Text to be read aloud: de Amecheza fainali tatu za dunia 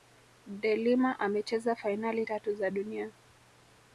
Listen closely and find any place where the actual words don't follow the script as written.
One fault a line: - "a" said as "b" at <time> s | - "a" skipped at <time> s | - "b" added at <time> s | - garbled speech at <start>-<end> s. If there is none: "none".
- "Lima" added at 0.8 s